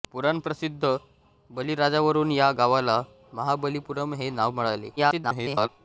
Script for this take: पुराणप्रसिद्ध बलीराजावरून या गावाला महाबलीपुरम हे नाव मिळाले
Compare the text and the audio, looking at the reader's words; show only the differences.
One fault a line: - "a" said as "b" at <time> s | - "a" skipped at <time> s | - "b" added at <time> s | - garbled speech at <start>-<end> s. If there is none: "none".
- garbled speech at 5.0-5.7 s